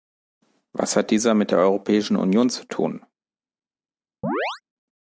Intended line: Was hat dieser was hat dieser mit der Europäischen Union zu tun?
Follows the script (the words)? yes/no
no